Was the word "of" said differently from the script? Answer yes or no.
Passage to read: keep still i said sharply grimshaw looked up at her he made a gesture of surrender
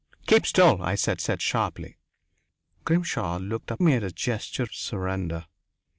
yes